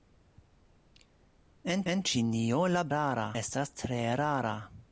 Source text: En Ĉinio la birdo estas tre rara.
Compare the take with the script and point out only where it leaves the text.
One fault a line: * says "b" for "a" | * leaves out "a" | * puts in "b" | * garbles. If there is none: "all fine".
* puts in "en"
* says "rara" for "birdo"